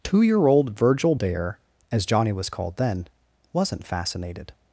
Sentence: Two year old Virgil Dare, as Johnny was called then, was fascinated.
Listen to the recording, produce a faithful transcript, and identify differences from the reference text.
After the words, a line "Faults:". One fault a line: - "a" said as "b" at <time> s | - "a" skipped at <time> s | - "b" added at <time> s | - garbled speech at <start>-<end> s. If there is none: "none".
Two year old Virgil Dare, as Johnny was called then, wasn't fascinated.
Faults:
- "was" said as "wasn't" at 3.5 s